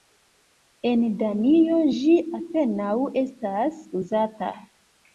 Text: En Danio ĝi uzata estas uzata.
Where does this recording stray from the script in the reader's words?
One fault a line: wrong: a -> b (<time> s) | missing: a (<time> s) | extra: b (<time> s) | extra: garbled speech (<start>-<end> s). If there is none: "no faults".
wrong: uzata -> apenaŭ (2.4 s)